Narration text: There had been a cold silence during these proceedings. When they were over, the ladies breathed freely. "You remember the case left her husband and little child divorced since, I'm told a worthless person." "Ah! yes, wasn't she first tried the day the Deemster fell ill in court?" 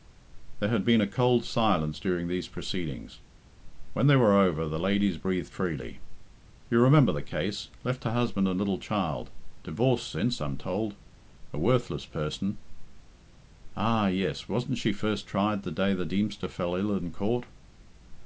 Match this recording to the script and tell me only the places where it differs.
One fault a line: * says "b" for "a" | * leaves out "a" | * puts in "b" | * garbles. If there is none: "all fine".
all fine